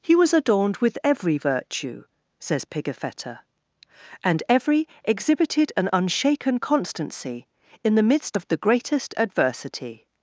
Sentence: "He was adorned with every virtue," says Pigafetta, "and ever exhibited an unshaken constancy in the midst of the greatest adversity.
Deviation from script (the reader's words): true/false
true